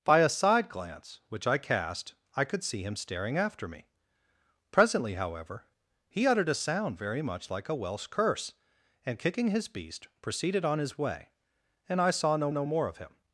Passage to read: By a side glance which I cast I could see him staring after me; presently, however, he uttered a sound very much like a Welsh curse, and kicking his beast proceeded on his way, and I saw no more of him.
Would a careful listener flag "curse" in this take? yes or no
no